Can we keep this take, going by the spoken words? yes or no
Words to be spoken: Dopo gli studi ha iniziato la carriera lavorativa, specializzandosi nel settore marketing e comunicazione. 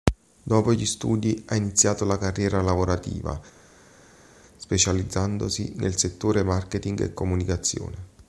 yes